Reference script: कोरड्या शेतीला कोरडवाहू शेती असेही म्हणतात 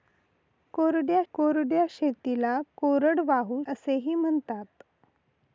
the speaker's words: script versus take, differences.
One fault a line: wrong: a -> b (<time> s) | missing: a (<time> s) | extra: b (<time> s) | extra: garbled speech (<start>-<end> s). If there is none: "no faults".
extra: कोरड्या (1.3 s)
missing: शेती (3.6 s)